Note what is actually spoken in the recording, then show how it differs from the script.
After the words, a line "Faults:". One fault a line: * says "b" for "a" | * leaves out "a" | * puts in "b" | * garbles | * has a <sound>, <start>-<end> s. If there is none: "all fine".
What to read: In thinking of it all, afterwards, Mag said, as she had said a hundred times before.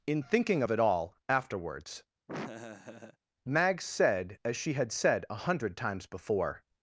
In thinking of it all, afterwards, Mag said, as she had said a hundred times before.
Faults:
* has a laugh, 2.3-3.2 s